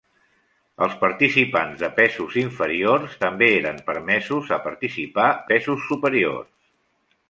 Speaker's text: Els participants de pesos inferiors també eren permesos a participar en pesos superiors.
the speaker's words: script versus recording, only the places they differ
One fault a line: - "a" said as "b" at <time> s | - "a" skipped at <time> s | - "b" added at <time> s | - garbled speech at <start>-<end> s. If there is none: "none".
- "en" skipped at 5.3 s